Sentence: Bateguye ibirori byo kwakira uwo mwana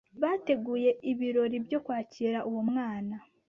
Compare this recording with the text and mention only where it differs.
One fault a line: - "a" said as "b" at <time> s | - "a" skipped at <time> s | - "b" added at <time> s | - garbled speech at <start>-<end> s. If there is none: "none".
none